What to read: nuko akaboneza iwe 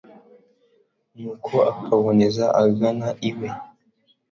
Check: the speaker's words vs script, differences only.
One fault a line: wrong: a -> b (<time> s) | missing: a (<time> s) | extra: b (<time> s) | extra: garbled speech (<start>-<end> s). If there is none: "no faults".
extra: agana (2.6 s)